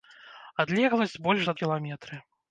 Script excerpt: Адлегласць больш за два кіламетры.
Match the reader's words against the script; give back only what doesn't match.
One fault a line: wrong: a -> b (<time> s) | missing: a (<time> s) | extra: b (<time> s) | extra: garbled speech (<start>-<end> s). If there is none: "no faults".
missing: два (1.6 s)